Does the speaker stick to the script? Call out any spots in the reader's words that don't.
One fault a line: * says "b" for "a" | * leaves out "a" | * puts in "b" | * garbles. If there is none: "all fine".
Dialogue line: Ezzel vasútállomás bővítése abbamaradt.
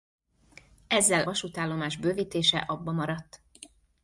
all fine